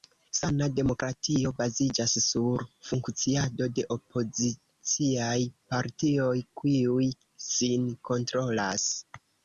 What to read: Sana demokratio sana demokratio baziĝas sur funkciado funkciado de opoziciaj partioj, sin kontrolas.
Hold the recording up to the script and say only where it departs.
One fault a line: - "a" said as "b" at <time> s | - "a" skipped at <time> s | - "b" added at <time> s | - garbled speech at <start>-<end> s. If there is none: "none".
- "sana demokratio" skipped at 1.5 s
- "funkciado" skipped at 3.7 s
- "kiuj" added at 6.6 s